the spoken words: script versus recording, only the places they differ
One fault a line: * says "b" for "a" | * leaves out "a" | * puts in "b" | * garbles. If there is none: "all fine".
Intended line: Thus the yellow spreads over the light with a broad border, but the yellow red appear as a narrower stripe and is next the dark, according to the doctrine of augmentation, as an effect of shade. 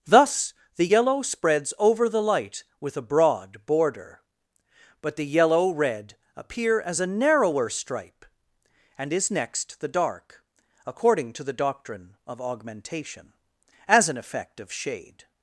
all fine